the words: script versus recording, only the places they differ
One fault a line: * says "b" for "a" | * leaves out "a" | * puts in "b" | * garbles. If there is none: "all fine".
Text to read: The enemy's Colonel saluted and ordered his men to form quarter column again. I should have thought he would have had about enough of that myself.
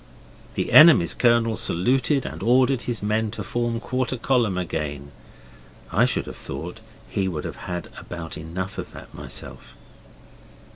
all fine